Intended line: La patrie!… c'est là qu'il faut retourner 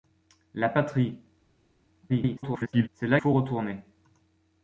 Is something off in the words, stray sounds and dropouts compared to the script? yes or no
yes